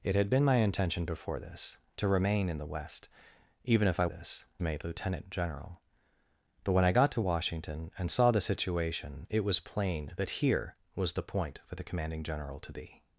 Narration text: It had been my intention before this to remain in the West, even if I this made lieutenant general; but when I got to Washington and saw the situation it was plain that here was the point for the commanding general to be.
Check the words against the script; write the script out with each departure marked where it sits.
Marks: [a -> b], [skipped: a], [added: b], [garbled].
It had been my intention before this to remain in the West, even if I this made lieutenant general; but when I got to Washington and saw the situation it was plain that here was the point for the commanding general to be.